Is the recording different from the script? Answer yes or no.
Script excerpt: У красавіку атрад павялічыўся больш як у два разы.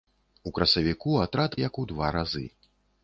yes